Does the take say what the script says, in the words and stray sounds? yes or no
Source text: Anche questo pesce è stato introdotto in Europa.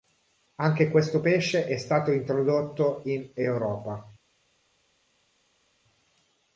yes